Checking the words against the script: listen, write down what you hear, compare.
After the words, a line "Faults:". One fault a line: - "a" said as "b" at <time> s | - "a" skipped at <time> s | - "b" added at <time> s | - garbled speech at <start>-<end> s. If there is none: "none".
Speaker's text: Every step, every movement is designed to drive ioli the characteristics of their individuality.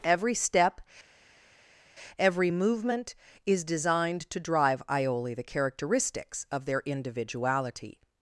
Every step, every movement is designed to drive ioli the characteristics of their individuality.
Faults:
none